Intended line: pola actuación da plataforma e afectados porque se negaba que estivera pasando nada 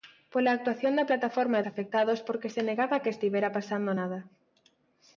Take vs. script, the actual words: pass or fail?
pass